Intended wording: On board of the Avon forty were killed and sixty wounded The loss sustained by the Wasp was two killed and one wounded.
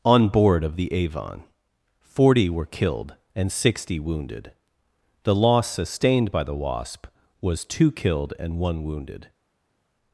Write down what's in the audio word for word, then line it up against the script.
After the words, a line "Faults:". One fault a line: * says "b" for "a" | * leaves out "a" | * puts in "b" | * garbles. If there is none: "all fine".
On board of the Avon forty were killed and sixty wounded The loss sustained by the Wasp was two killed and one wounded.
Faults:
all fine